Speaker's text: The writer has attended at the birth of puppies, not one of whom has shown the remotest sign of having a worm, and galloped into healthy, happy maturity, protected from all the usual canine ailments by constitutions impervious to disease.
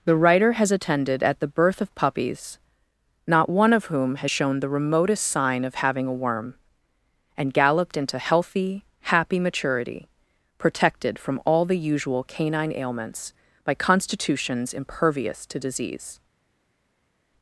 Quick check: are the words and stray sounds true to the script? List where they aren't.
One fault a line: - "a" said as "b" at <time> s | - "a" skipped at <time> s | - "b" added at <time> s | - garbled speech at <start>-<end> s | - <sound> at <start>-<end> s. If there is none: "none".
none